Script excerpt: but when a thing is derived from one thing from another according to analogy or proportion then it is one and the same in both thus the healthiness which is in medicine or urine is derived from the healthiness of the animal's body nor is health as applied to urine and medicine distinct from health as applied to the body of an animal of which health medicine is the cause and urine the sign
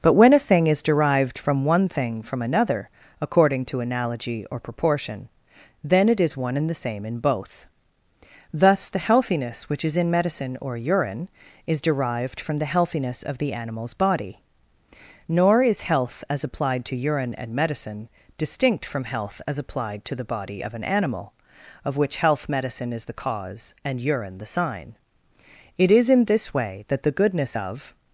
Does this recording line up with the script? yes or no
no